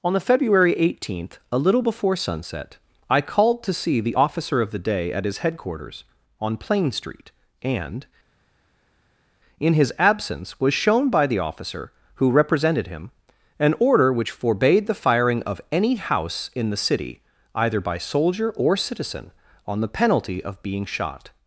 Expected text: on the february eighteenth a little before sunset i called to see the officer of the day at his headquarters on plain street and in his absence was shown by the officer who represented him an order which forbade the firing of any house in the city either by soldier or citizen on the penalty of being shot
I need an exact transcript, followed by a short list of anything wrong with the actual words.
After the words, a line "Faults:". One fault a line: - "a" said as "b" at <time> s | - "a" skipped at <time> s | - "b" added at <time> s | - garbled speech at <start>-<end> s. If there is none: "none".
on the february eighteenth a little before sunset i called to see the officer of the day at his headquarters on plain street and in his absence was shown by the officer who represented him an order which forbade the firing of any house in the city either by soldier or citizen on the penalty of being shot
Faults:
none